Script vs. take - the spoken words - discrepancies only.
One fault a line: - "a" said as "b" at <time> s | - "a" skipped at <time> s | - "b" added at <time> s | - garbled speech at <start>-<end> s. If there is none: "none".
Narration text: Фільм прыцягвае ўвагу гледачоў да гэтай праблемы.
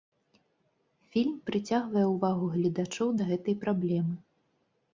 none